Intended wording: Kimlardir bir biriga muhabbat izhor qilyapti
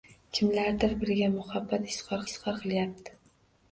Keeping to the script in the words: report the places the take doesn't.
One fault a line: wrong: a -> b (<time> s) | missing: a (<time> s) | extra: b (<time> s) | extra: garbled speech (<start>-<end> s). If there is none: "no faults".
missing: bir (0.9 s)
extra: izhor (2.3 s)